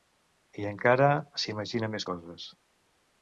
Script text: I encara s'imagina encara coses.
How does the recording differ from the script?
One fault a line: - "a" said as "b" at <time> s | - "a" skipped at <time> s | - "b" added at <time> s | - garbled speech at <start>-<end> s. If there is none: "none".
- "encara" said as "més" at 2.0 s